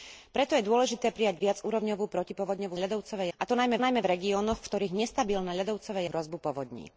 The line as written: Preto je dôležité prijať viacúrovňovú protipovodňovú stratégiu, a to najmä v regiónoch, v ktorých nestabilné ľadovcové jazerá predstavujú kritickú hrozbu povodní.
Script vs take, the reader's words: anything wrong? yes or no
yes